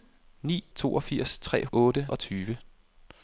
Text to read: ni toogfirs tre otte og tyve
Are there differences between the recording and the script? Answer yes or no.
no